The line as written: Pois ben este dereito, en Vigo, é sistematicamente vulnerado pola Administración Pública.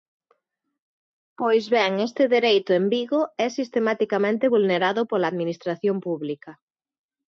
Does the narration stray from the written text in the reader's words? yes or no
no